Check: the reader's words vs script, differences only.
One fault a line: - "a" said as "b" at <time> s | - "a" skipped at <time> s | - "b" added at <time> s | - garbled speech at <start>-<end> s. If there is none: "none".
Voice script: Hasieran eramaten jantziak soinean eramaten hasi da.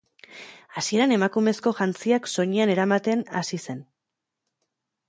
- "eramaten" said as "emakumezko" at 1.2 s
- "da" said as "zen" at 3.7 s